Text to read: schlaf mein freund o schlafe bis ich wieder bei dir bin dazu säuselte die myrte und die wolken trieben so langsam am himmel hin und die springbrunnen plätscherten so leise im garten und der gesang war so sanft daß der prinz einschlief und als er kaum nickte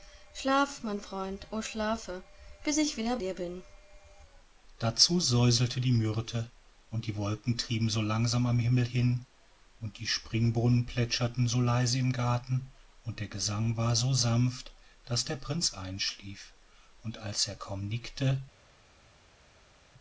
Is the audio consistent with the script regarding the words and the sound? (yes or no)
no